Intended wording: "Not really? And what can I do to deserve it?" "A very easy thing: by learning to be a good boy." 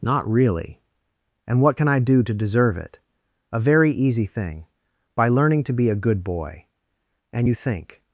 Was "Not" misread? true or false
false